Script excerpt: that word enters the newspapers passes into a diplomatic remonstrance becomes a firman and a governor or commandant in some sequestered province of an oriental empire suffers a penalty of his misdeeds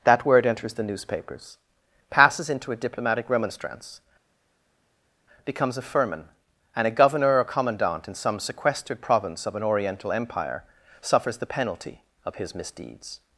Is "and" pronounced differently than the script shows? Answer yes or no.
no